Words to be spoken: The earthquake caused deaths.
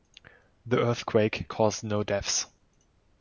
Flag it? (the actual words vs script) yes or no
yes